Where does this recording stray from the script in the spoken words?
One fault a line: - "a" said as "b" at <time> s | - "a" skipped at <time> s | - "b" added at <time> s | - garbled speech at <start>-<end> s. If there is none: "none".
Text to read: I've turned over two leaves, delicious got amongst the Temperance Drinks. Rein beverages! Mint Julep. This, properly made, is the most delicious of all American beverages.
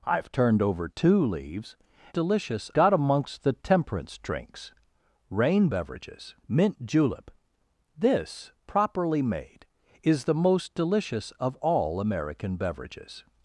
none